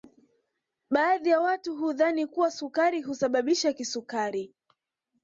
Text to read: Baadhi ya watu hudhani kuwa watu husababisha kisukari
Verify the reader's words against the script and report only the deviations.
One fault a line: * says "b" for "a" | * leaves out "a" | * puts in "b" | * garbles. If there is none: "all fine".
* says "sukari" for "watu"